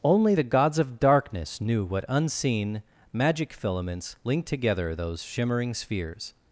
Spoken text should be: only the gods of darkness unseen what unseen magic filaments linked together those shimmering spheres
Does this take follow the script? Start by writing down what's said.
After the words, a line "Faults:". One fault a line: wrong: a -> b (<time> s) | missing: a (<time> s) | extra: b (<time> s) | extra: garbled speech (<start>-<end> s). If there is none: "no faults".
only the gods of darkness knew what unseen magic filaments linked together those shimmering spheres
Faults:
wrong: unseen -> knew (1.6 s)